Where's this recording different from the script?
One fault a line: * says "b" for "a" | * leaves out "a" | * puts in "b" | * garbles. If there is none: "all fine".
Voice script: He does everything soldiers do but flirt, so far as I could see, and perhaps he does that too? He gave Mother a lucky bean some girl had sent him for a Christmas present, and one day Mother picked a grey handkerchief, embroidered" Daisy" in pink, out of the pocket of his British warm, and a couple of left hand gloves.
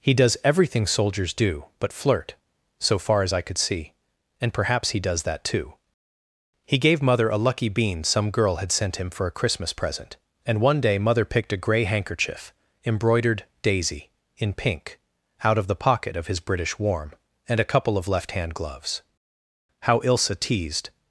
* puts in "How Ilsa teased"